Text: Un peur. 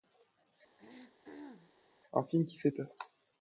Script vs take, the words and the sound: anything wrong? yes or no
yes